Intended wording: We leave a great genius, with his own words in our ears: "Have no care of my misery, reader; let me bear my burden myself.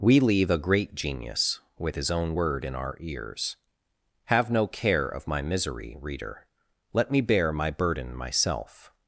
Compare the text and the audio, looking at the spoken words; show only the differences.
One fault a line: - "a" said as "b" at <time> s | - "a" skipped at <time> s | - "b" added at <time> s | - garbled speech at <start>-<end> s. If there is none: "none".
- "words" said as "word" at 2.3 s